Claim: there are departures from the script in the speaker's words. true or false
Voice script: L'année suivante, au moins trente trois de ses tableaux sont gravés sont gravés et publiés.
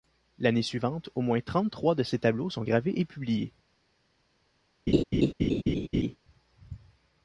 true